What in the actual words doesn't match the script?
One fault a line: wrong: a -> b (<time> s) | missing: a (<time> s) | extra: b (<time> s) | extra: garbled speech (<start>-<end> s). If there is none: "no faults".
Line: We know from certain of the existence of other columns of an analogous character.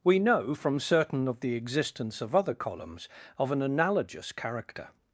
no faults